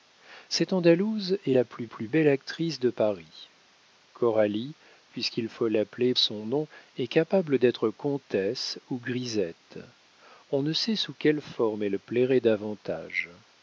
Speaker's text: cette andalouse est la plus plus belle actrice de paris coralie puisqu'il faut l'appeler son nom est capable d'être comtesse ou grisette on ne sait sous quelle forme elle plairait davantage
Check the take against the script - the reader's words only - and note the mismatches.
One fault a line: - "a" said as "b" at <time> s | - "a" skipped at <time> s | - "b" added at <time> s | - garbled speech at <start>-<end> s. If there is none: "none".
none